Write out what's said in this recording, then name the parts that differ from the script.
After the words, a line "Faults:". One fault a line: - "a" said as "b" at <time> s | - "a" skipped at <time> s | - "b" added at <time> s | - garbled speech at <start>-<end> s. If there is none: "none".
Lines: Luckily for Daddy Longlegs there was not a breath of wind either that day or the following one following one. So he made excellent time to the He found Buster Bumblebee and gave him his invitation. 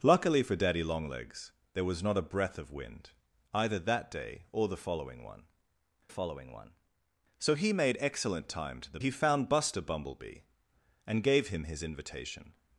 Luckily for Daddy Longlegs there was not a breath of wind either that day or the following one following one. So he made excellent time to the He found Buster Bumblebee and gave him his invitation.
Faults:
none